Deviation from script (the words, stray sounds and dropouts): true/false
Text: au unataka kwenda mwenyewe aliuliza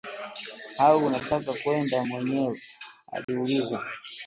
true